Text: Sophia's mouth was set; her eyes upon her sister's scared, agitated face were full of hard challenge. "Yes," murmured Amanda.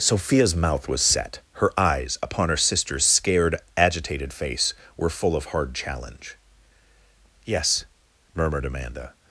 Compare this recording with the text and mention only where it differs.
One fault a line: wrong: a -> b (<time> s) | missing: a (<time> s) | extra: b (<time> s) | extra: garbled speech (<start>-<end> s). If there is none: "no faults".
no faults